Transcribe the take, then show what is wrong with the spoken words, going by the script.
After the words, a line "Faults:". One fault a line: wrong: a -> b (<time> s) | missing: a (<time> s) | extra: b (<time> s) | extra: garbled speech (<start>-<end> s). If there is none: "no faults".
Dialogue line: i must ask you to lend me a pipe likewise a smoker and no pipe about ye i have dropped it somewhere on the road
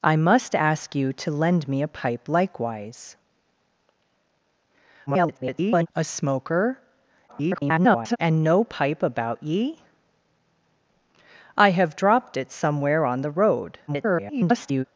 i must ask you to lend me a pipe likewise [garbled] a smoker [garbled] and no pipe about ye i have dropped it somewhere on the road [garbled]
Faults:
extra: garbled speech (5.1-5.9 s)
extra: garbled speech (7.3-8.2 s)
extra: garbled speech (13.9-14.8 s)